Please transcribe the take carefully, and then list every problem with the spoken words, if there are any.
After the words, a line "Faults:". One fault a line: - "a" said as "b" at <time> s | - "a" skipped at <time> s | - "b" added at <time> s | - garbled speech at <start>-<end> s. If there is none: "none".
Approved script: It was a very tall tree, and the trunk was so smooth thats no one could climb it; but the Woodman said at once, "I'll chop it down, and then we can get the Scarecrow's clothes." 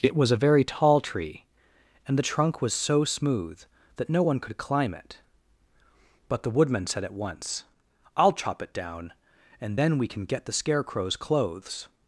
It was a very tall tree, and the trunk was so smooth that no one could climb it; but the Woodman said at once, "I'll chop it down, and then we can get the Scarecrow's clothes."
Faults:
- "thats" said as "that" at 4.0 s